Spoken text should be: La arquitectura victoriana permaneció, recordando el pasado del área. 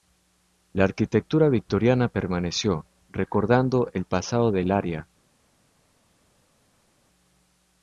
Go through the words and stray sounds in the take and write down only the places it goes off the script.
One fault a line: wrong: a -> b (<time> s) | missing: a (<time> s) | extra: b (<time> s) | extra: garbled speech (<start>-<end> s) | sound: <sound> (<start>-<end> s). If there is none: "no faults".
no faults